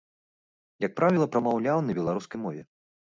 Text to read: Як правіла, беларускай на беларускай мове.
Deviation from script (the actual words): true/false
true